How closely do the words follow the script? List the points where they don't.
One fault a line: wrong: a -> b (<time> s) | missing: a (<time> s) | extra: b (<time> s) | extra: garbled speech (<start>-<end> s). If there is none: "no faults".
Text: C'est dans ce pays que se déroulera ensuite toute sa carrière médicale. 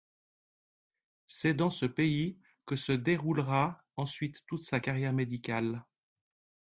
no faults